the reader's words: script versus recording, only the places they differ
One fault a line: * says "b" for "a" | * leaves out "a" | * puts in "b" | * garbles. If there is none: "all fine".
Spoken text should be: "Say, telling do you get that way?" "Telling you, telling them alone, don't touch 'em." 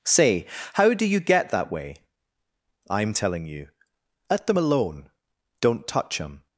* says "how" for "telling"
* puts in "I'm"
* says "let" for "telling"